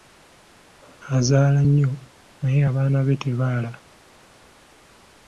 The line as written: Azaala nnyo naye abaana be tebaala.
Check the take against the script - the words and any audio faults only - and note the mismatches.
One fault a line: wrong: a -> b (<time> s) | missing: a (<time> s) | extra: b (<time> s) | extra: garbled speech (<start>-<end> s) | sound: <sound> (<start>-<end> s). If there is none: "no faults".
no faults